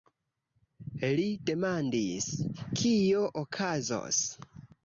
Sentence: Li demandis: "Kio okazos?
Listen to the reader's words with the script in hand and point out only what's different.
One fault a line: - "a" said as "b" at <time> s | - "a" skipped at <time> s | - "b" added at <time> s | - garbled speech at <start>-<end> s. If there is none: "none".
none